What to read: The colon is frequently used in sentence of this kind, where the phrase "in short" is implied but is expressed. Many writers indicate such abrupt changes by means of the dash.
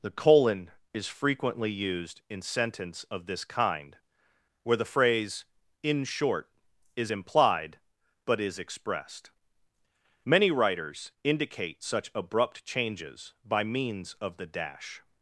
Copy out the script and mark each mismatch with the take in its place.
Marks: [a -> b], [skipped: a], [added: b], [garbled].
The colon is frequently used in sentence of this kind, where the phrase "in short" is implied but is expressed. Many writers indicate such abrupt changes by means of the dash.